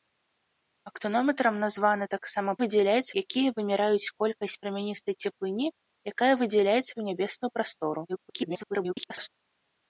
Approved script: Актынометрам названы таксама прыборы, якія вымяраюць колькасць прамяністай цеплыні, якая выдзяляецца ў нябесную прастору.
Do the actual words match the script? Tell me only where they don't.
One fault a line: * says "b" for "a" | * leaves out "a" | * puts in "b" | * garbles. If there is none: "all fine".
* says "выдзяляецца" for "прыборы"
* garbles